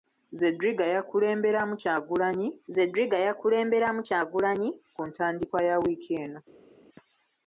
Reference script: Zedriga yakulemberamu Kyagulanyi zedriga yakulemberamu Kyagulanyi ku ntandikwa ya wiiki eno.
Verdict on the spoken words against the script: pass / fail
pass